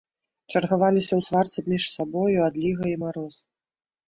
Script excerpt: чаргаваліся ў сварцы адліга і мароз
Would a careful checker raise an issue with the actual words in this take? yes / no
yes